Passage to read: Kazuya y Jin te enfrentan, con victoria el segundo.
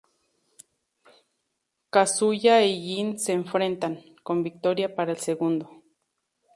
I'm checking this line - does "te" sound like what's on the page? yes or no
no